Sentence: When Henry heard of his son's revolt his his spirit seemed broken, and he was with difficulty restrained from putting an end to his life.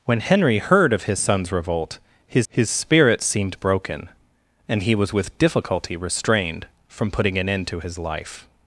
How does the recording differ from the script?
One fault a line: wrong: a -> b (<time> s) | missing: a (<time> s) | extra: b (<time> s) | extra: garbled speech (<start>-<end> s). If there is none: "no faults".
no faults